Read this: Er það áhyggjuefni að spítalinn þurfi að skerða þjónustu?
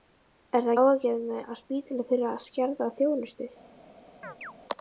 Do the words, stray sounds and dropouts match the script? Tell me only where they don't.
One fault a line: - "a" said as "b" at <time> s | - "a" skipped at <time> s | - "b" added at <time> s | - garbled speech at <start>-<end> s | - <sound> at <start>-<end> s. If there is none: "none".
- chirp at 4.2-4.5 s